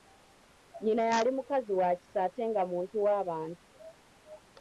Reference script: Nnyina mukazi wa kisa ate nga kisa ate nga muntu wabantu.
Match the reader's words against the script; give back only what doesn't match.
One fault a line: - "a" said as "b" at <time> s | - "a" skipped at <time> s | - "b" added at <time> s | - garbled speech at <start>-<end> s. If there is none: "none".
- "yali" added at 1.1 s
- "kisa ate nga" skipped at 2.6 s